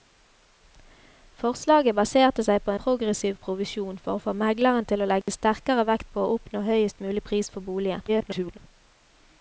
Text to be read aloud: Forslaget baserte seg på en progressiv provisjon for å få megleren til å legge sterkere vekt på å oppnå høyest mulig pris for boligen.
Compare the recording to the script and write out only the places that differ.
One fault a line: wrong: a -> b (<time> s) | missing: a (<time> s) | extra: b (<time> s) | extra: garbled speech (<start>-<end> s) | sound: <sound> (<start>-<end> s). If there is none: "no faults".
missing: en (2.7 s)
sound: dropout (5.2-5.3 s)
extra: garbled speech (8.1-8.6 s)